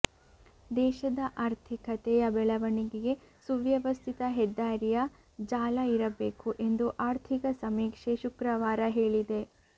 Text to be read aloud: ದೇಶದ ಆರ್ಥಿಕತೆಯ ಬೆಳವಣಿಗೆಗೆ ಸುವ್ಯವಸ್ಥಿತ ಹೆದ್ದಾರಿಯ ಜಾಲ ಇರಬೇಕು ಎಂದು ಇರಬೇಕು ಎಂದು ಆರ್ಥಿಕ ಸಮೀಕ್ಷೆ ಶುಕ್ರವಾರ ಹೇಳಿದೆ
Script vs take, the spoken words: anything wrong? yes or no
yes